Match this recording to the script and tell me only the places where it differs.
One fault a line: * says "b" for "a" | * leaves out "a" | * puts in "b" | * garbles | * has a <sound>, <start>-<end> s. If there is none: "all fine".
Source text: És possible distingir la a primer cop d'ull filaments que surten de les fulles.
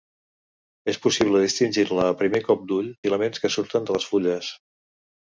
all fine